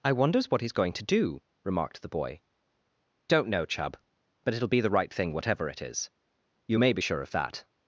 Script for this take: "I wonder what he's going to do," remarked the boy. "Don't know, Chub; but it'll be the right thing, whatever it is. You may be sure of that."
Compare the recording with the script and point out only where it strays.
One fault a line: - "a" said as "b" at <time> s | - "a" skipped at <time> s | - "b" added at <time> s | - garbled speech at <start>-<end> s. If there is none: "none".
- "wonder" said as "wonders" at 0.1 s